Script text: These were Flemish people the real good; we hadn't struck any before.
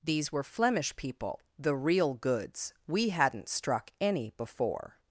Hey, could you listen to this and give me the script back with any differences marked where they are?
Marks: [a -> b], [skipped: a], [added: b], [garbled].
These were Flemish people the real [good; -> goods] we hadn't struck any before.